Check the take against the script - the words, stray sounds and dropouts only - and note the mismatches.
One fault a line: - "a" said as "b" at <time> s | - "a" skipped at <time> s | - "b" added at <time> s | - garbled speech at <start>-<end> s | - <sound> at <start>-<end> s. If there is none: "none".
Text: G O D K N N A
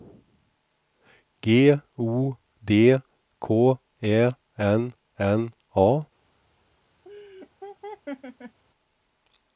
- "Ä" added at 4.0 s
- laugh at 7.0-8.6 s